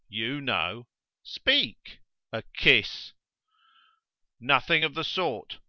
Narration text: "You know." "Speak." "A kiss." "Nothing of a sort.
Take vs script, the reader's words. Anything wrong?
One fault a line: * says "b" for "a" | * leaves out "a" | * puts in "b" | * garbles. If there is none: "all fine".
* says "the" for "a"